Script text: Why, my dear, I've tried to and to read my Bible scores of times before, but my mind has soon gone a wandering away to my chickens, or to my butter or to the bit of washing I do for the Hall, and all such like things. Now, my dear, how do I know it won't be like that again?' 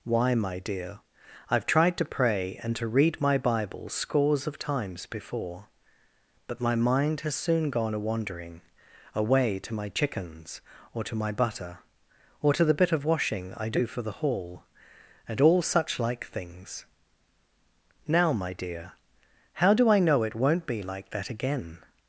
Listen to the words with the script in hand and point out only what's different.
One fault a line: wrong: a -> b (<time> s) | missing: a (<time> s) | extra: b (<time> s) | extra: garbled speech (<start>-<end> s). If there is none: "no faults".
extra: pray (2.0 s)